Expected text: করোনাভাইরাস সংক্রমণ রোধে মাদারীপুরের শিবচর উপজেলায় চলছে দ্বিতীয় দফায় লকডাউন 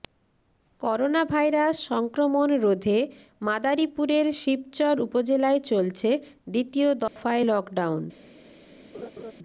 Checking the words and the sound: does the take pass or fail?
fail